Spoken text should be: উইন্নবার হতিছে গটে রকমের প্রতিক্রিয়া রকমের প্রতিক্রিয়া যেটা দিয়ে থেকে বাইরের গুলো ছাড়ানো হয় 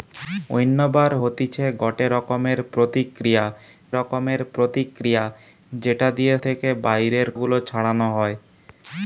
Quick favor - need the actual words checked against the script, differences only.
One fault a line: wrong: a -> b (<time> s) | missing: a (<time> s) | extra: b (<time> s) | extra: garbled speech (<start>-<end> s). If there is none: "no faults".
no faults